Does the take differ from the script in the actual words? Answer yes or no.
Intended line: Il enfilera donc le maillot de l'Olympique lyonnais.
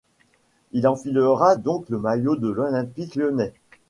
no